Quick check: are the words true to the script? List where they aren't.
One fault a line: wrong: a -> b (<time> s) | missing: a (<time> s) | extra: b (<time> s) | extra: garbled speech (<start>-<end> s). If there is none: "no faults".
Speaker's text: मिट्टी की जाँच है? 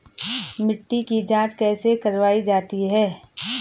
extra: कैसे करवायी जाती (1.5 s)